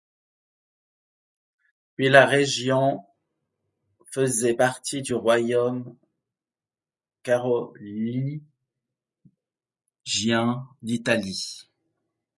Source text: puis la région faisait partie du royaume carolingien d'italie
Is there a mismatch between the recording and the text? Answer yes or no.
no